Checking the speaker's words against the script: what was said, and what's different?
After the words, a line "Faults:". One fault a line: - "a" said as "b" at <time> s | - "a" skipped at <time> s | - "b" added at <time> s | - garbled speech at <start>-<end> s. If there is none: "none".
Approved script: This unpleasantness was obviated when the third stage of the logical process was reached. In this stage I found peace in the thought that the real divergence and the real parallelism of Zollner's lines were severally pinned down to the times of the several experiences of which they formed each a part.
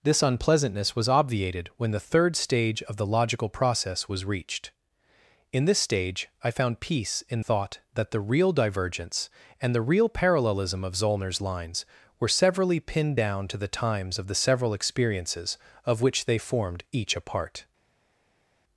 This unpleasantness was obviated when the third stage of the logical process was reached. In this stage I found peace in thought that the real divergence and the real parallelism of Zollner's lines were severally pinned down to the times of the several experiences of which they formed each a part.
Faults:
- "the" skipped at 7.4 s